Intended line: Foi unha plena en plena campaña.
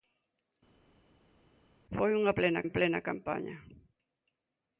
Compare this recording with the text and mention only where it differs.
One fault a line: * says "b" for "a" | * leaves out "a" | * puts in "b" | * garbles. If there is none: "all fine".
all fine